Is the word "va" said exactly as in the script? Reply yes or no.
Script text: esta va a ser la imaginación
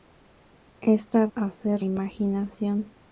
no